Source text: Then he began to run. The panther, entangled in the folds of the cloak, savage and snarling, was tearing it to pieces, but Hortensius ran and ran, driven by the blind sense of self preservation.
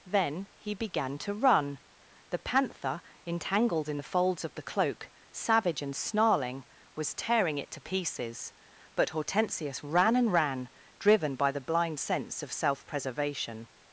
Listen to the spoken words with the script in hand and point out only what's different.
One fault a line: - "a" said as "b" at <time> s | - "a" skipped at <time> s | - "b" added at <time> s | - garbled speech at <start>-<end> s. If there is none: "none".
none